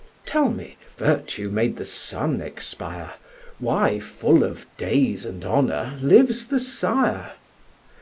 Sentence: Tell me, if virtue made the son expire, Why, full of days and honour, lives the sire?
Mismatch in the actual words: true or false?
true